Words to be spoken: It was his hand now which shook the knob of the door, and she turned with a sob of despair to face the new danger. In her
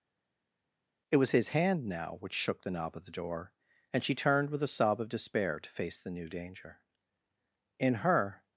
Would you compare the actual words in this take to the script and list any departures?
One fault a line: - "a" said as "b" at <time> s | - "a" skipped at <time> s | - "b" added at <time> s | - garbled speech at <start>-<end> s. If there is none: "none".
none